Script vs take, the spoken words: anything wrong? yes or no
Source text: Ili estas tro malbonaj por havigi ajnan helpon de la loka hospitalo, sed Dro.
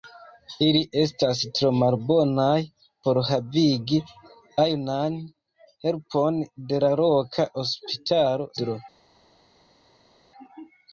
yes